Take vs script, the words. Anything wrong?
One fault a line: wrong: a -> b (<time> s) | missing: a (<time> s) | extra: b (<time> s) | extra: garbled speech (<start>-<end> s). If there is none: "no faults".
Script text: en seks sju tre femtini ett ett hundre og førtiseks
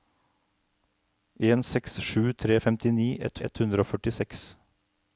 no faults